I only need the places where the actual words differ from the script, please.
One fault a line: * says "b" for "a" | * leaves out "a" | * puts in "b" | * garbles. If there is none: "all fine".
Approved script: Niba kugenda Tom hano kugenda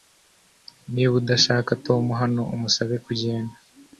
* says "udashaka" for "kugenda"
* puts in "umusabe"